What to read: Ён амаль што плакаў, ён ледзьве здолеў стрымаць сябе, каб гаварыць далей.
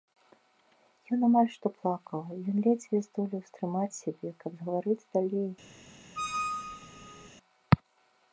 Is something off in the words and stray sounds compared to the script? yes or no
yes